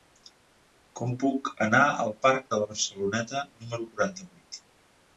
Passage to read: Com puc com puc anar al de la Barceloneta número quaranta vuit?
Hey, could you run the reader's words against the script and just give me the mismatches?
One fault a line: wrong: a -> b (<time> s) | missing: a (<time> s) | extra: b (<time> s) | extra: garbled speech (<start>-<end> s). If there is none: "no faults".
missing: com puc (1.5 s)
extra: parc (2.3 s)